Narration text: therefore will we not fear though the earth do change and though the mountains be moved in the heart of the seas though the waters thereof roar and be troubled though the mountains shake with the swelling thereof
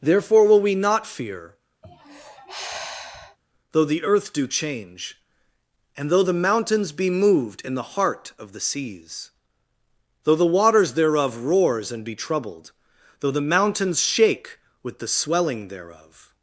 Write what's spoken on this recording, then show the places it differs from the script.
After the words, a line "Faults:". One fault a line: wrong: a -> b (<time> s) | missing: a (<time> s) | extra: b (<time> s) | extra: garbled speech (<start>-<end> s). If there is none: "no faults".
therefore will we not fear though the earth do change and though the mountains be moved in the heart of the seas though the waters thereof roars and be troubled though the mountains shake with the swelling thereof
Faults:
wrong: roar -> roars (11.4 s)